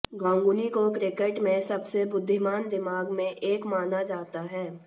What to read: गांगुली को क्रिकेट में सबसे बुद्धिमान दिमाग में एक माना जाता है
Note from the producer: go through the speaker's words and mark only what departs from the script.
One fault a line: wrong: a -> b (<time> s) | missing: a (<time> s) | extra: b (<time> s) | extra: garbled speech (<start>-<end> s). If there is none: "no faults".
no faults